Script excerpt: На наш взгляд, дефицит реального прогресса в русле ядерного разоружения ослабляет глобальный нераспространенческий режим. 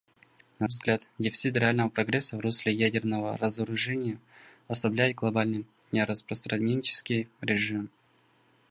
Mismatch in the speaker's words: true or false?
true